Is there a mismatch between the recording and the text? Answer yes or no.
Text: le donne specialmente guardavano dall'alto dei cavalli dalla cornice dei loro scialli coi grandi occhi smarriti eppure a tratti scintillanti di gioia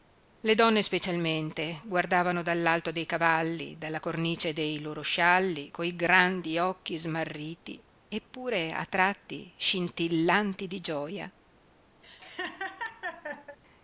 no